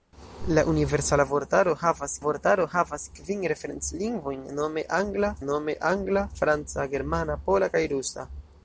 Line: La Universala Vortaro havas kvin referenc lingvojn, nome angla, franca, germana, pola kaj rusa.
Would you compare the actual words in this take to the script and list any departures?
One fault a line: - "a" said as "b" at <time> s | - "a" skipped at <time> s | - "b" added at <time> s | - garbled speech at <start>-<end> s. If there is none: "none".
- "Vortaro havas" added at 2.2 s
- "nome angla" added at 5.5 s